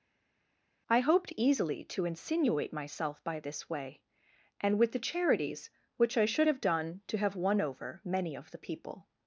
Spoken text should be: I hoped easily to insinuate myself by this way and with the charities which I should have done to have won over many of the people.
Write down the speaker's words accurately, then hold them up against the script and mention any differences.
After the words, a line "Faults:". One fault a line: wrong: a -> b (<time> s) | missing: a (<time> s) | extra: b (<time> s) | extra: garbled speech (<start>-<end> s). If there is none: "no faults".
I hoped easily to insinuate myself by this way and with the charities which I should have done to have won over many of the people.
Faults:
no faults